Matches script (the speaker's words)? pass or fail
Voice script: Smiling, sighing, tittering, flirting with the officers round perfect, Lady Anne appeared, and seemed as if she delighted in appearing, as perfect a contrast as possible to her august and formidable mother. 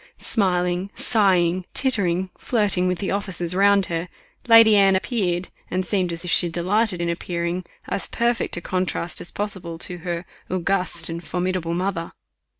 fail